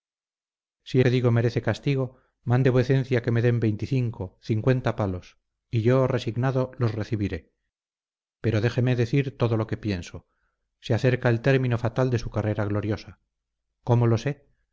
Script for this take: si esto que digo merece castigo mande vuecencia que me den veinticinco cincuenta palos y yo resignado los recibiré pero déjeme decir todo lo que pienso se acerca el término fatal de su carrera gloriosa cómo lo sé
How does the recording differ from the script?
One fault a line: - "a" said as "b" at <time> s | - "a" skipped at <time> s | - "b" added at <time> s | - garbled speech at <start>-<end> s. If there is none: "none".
- "esto" skipped at 1.0 s